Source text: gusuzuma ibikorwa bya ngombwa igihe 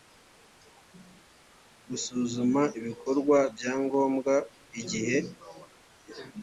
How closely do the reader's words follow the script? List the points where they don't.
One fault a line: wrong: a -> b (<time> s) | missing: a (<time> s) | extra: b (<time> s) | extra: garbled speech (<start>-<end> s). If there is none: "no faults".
no faults